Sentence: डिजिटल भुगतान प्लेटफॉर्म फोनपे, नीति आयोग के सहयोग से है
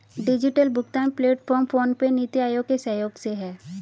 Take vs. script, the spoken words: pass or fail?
pass